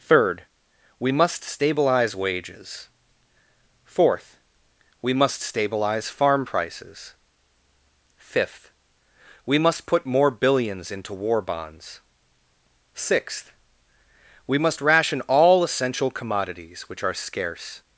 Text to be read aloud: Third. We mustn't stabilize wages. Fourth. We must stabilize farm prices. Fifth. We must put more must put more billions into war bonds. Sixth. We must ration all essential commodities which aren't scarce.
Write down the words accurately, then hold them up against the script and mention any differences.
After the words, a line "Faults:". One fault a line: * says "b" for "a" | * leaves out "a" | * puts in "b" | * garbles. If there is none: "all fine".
Third. We must stabilize wages. Fourth. We must stabilize farm prices. Fifth. We must put more billions into war bonds. Sixth. We must ration all essential commodities which are scarce.
Faults:
* says "must" for "mustn't"
* leaves out "must put more"
* says "are" for "aren't"